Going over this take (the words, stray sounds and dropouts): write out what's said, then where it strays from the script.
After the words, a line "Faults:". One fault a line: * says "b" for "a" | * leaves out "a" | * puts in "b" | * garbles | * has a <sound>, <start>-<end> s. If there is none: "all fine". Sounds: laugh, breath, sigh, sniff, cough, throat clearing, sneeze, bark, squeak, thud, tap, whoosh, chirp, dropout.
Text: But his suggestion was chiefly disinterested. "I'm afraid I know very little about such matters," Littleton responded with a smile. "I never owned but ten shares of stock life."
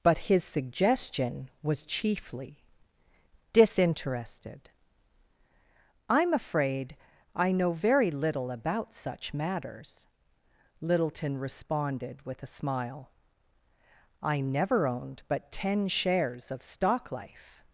But his suggestion was chiefly disinterested. "I'm afraid I know very little about such matters," Littleton responded with a smile. "I never owned but ten shares of stock life."
Faults:
all fine